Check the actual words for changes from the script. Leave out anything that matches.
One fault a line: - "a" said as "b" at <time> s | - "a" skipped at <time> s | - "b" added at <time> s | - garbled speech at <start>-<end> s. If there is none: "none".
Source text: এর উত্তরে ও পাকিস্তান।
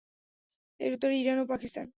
- "ইরান" added at 1.2 s